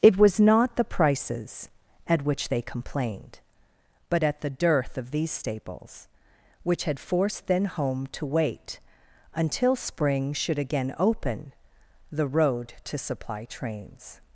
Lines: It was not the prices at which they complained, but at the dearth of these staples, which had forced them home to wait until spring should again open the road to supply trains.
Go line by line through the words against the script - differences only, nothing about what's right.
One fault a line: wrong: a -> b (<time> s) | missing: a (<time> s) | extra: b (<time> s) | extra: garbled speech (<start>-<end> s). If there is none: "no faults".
wrong: them -> then (7.5 s)